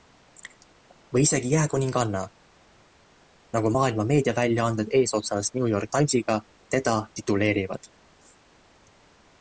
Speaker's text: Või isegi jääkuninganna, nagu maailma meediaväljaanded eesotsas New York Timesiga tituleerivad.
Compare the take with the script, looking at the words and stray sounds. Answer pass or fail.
fail